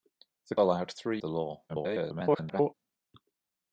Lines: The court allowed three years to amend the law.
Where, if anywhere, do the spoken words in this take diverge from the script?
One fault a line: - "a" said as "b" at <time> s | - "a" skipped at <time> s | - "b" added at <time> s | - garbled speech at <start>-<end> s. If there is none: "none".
- "court" skipped at 0.6 s
- "years to amend" skipped at 1.2 s
- garbled speech at 1.7-2.7 s